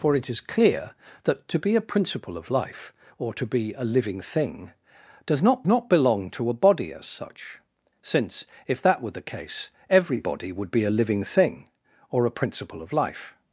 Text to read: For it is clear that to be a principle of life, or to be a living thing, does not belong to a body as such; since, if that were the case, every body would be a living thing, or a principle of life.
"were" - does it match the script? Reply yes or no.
yes